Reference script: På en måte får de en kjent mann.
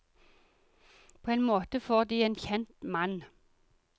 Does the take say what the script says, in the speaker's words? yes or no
yes